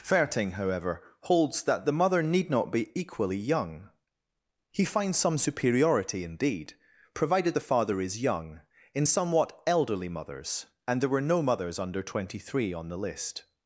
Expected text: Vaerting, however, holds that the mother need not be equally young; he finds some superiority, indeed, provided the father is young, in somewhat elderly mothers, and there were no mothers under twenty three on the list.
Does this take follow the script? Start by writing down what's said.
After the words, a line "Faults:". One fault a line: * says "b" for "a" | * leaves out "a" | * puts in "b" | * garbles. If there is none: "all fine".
Vaerting, however, holds that the mother need not be equally young; he finds some superiority, indeed, provided the father is young, in somewhat elderly mothers, and there were no mothers under twenty three on the list.
Faults:
all fine